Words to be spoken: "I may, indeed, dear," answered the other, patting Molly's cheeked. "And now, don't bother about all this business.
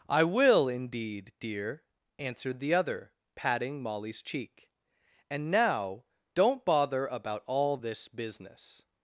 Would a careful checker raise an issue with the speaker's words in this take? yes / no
yes